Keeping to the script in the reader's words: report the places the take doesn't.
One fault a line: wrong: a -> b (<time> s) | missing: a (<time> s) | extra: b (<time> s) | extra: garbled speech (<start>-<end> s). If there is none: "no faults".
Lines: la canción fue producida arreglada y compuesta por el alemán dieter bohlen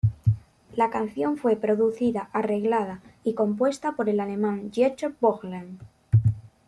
no faults